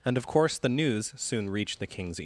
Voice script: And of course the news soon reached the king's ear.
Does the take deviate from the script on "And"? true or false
false